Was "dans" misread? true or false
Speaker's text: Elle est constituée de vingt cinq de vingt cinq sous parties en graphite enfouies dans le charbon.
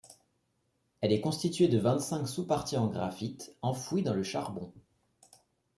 false